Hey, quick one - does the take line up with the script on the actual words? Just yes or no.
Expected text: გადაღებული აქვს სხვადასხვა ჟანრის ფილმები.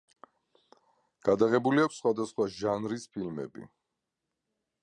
yes